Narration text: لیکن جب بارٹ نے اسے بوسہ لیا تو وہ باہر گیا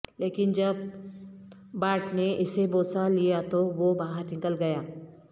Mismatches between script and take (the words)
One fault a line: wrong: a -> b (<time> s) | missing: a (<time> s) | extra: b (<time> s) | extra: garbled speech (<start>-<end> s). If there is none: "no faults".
extra: نکل (4.3 s)